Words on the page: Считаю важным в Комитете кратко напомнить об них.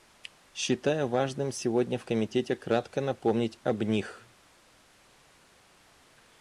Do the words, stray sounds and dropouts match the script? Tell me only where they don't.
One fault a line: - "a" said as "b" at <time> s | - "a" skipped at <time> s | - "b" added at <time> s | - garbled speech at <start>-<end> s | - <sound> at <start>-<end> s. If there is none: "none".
- "сегодня" added at 1.5 s